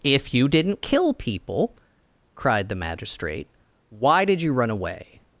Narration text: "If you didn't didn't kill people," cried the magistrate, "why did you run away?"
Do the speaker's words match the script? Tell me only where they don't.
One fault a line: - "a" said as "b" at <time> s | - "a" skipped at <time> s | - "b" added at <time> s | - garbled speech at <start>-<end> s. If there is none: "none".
- "didn't" skipped at 0.8 s